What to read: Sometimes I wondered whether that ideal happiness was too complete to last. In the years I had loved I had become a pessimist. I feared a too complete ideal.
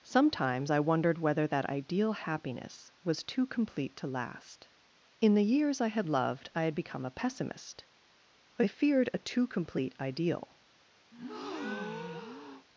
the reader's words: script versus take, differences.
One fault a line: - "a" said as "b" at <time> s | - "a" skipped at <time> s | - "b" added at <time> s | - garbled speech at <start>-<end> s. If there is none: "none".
none